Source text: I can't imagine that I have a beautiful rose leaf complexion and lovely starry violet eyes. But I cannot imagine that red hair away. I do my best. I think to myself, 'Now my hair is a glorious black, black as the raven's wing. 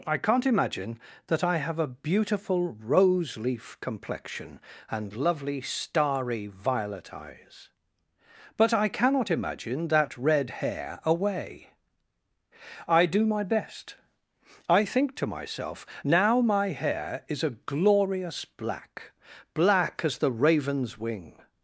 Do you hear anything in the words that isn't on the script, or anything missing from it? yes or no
no